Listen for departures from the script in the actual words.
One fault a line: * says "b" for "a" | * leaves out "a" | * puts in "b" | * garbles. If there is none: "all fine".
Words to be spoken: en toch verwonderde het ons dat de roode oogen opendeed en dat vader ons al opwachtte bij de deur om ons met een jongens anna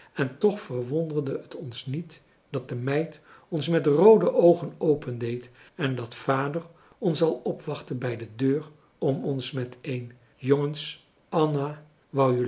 * puts in "niet"
* puts in "meid ons met"